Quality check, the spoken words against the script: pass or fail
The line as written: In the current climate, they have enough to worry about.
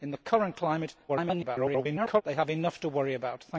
fail